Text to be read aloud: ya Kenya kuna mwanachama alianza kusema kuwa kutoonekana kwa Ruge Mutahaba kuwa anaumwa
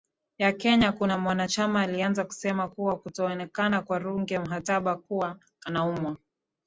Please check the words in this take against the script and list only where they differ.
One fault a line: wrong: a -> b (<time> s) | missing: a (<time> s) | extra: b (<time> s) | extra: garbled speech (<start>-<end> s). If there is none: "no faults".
no faults